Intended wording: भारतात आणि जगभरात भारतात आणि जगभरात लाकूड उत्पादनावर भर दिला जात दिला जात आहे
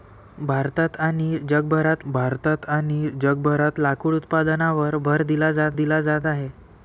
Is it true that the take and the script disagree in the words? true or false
false